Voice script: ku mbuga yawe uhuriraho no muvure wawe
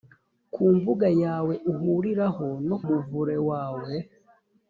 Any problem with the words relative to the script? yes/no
no